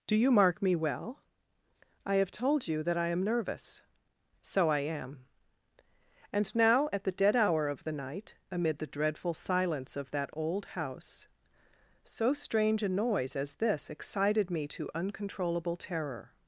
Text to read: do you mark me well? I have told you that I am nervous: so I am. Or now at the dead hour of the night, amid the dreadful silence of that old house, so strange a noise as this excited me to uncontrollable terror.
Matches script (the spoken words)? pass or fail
fail